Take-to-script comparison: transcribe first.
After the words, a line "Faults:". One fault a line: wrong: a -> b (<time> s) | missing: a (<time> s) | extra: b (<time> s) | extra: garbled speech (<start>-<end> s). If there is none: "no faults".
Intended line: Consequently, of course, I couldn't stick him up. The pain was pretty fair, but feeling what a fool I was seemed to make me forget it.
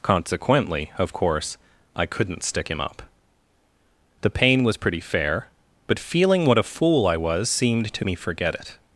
Consequently, of course, I couldn't stick him up. The pain was pretty fair, but feeling what a fool I was seemed to me forget it.
Faults:
missing: make (8.1 s)